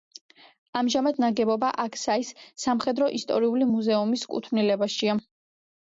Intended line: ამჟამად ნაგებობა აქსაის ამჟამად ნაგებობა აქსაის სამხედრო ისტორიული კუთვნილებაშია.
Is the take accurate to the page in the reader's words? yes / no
no